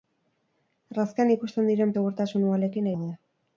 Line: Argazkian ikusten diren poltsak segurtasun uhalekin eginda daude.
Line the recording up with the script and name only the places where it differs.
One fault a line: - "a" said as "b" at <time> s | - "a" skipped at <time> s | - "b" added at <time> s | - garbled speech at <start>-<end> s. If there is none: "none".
- "poltsak" skipped at 1.9 s
- "eginda" skipped at 2.9 s